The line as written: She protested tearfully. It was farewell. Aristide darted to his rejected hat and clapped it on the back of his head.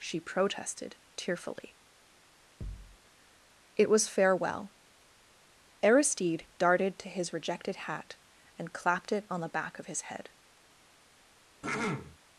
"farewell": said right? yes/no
yes